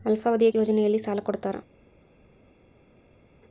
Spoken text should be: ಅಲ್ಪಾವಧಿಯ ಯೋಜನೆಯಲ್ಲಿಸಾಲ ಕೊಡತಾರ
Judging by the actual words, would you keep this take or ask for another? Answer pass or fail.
pass